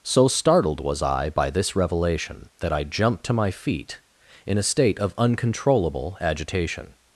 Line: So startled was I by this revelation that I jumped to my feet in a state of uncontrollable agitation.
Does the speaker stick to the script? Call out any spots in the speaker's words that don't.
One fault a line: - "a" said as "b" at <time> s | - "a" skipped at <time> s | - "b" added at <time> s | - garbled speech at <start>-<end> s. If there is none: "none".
none